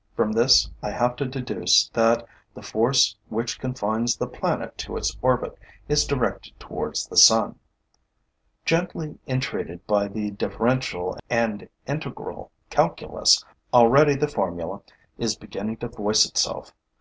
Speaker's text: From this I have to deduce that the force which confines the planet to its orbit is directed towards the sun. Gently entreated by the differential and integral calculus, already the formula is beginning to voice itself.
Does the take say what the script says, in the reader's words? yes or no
yes